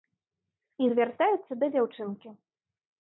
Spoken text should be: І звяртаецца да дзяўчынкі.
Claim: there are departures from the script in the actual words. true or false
false